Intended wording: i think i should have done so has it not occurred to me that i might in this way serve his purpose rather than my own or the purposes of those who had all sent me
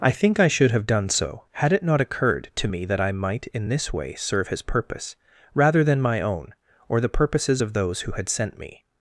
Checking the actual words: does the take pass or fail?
fail